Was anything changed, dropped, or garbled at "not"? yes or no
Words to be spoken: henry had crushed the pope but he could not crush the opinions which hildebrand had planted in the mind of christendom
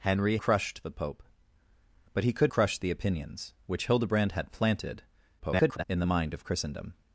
yes